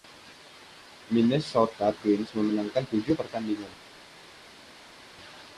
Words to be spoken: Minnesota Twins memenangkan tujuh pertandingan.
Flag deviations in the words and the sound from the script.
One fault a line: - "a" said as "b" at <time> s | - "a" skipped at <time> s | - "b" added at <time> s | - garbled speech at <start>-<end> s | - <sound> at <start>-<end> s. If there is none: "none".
none